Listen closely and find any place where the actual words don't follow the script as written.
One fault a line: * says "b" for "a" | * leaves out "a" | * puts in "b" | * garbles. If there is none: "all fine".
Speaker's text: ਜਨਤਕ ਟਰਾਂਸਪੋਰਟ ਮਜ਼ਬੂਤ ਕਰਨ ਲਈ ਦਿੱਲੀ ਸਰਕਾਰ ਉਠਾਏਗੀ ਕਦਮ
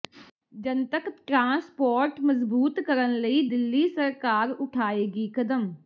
all fine